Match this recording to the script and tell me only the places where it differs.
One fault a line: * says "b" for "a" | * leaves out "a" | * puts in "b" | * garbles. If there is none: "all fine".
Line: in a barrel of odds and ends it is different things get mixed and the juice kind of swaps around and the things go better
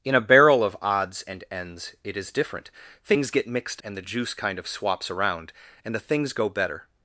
all fine